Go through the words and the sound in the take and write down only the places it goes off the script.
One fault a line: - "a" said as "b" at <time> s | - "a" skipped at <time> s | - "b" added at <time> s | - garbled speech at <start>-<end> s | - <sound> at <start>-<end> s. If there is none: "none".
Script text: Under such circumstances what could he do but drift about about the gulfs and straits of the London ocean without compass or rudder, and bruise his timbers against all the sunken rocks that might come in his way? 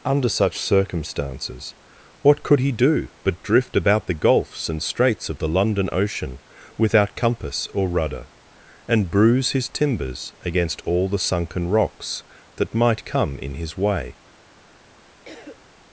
- "about" skipped at 4.1 s
- cough at 15.3-15.6 s